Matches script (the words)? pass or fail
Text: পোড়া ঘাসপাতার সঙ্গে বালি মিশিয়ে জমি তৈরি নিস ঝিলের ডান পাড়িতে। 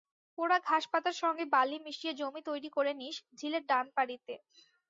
fail